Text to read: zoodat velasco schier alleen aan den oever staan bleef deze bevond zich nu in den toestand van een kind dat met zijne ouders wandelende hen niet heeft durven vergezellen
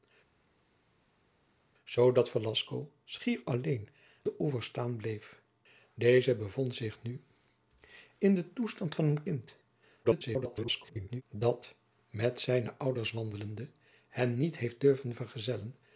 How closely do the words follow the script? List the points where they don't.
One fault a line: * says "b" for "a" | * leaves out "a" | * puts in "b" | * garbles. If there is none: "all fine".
* leaves out "aan"
* garbles